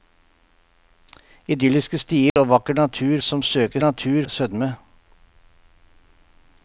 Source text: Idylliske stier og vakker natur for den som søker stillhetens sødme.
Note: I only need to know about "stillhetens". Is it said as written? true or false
false